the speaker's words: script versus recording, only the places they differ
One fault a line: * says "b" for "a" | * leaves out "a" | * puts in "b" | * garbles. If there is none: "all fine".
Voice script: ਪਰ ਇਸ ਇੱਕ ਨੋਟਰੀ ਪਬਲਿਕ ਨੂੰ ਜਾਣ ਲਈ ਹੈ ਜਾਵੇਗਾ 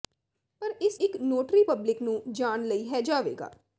all fine